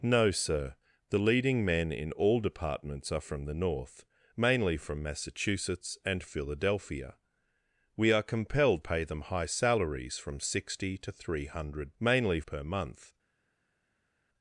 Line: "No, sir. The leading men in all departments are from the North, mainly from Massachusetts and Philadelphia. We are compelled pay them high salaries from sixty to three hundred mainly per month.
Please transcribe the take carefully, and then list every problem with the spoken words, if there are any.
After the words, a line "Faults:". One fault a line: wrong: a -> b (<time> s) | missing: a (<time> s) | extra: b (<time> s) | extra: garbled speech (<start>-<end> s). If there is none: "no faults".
"No, sir. The leading men in all departments are from the North, mainly from Massachusetts and Philadelphia. We are compelled pay them high salaries from sixty to three hundred mainly per month.
Faults:
no faults